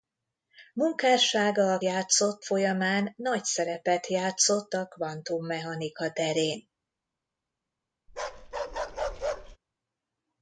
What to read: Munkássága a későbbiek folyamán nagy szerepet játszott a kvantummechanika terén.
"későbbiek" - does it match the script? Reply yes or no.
no